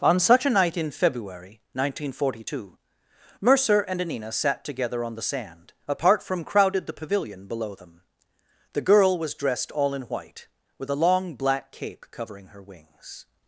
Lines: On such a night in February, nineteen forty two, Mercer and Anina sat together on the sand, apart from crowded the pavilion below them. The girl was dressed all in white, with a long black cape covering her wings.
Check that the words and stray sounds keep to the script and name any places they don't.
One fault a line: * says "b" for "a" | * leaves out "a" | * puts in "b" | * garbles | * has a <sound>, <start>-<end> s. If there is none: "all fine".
all fine